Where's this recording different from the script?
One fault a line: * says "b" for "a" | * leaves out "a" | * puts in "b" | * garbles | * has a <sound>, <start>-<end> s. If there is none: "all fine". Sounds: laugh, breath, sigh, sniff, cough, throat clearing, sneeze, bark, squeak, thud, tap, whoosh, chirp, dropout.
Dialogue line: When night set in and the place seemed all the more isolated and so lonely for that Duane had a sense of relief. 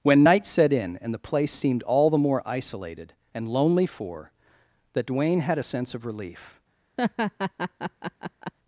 * leaves out "so"
* has a laugh, 7.0-8.5 s